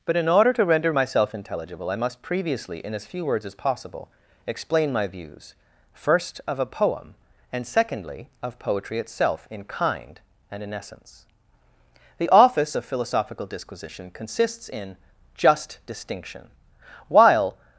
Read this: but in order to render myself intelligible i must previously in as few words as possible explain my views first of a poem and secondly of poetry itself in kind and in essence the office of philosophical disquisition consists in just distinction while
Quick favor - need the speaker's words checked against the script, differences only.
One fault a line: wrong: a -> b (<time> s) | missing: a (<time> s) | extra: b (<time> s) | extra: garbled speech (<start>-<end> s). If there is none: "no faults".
no faults